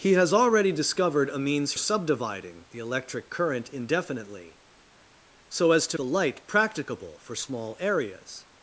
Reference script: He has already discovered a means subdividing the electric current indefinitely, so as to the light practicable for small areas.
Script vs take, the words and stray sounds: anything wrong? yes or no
no